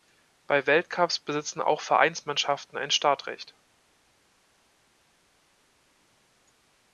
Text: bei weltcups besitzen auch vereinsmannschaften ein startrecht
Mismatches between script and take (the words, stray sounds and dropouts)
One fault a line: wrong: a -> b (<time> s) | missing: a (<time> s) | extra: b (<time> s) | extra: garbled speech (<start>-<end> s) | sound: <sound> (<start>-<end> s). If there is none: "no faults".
no faults